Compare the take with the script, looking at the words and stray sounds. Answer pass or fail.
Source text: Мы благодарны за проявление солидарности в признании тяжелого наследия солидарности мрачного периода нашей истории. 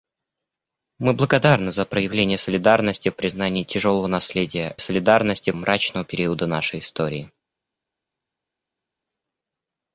pass